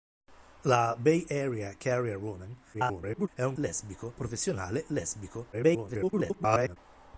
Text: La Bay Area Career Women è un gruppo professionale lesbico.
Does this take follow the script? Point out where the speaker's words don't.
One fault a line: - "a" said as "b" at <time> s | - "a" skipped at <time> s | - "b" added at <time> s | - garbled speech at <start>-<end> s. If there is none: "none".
- garbled speech at 2.7-3.3 s
- "gruppo" said as "lesbico" at 3.5 s
- garbled speech at 5.5-6.8 s